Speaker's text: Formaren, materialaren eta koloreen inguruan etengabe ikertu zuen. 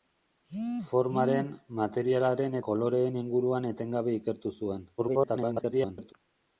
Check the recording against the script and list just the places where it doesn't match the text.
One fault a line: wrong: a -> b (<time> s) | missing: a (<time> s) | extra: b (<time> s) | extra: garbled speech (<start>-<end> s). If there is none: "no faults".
missing: eta (2.6 s)
extra: garbled speech (5.0-6.1 s)